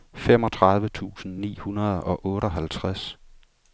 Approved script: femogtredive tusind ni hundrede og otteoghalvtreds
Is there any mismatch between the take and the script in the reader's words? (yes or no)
no